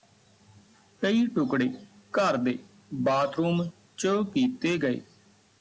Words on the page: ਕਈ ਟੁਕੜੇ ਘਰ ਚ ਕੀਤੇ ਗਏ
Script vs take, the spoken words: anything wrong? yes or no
yes